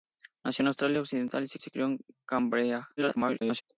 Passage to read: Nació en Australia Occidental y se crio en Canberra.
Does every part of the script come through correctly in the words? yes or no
no